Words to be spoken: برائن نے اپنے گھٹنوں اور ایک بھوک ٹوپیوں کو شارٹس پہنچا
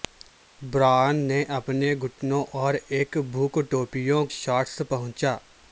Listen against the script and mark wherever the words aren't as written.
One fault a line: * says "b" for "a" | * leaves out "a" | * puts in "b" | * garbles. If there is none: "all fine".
* leaves out "کو"